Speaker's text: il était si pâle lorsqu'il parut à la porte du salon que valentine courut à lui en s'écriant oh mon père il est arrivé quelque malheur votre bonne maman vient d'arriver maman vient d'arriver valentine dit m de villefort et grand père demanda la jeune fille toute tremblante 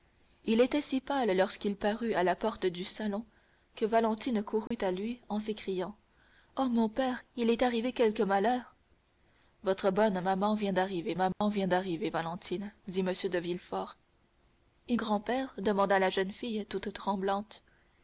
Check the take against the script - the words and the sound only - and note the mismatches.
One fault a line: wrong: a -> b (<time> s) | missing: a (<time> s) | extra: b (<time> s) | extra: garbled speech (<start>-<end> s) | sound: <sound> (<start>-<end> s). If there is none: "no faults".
sound: dropout (4.7-4.7 s)
sound: dropout (11.3-11.4 s)